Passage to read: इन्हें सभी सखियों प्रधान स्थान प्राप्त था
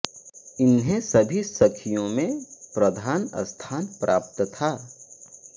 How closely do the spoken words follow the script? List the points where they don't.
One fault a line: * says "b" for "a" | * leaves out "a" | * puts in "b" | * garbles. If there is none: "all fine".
* puts in "में"